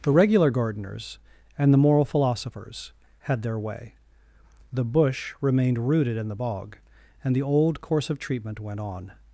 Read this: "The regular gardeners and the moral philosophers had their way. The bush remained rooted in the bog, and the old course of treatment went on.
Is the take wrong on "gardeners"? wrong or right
right